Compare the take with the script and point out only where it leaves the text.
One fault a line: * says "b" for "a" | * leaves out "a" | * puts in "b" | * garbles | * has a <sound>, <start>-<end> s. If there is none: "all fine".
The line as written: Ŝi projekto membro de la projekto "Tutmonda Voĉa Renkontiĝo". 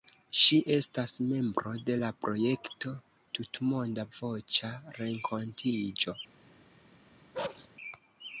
* says "estas" for "projekto"
* has a bark, 7.3-7.7 s